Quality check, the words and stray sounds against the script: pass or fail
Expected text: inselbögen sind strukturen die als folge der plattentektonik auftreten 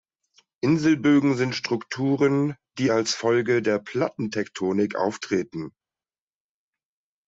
pass